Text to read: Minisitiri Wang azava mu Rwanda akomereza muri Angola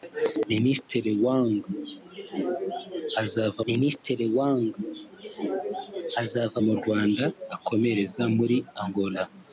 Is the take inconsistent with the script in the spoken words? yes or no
yes